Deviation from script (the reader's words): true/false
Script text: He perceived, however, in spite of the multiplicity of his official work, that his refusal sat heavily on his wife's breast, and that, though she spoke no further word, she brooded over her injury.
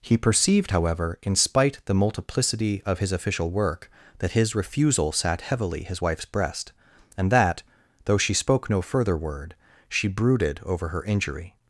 true